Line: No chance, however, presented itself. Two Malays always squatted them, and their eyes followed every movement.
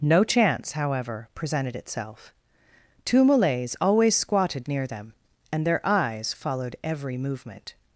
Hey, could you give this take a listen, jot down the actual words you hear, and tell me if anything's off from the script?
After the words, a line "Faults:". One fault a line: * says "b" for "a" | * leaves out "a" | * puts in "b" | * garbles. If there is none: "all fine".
No chance, however, presented itself. Two Malays always squatted near them, and their eyes followed every movement.
Faults:
* puts in "near"